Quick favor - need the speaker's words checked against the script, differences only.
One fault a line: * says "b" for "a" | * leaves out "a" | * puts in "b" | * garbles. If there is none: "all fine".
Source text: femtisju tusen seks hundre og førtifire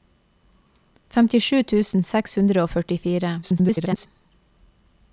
* garbles